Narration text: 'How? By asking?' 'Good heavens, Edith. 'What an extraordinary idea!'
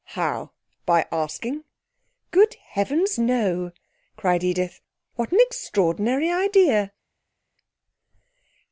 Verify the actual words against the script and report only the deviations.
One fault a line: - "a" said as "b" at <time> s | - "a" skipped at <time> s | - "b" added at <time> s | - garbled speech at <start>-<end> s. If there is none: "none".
- "no cried" added at 3.2 s